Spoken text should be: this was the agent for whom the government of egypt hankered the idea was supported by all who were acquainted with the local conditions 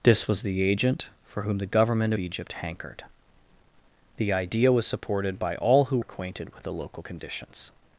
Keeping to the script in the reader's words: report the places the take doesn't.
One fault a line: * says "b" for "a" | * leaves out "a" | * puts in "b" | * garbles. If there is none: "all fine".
* leaves out "of"
* leaves out "were"